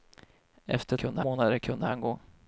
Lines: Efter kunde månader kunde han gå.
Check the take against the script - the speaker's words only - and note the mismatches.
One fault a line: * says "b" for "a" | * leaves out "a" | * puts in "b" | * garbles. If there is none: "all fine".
all fine